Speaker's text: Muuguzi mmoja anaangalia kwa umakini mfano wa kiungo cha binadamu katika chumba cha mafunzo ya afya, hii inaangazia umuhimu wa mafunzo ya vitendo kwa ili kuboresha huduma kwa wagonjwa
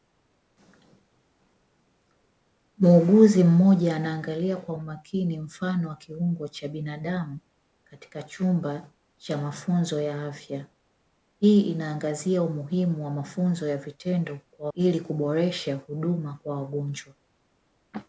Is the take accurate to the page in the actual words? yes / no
yes